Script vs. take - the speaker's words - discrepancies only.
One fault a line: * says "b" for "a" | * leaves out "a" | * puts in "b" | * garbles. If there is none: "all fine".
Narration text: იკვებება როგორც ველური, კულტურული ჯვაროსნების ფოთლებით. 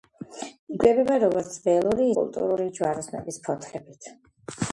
all fine